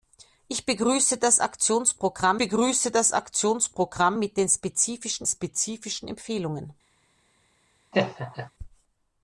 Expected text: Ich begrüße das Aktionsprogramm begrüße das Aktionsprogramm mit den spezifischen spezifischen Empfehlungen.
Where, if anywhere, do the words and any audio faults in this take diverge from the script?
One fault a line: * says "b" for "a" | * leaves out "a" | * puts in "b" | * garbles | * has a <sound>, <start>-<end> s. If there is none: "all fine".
* has a laugh, 7.9-8.5 s